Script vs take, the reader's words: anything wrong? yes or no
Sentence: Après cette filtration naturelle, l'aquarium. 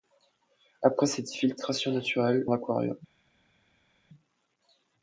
no